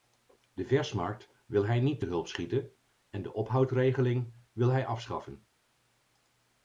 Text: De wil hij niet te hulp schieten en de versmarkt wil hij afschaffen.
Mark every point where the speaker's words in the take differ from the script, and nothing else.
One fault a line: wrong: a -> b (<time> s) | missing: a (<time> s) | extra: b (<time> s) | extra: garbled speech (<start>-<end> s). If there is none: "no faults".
extra: versmarkt (0.7 s)
wrong: versmarkt -> ophoudregeling (3.3 s)